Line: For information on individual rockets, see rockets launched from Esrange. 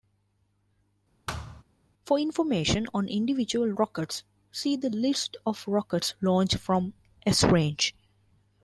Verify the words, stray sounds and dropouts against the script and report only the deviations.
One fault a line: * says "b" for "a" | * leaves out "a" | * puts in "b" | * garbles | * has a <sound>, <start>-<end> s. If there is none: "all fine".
* has a thud, 1.3-1.6 s
* puts in "the List of"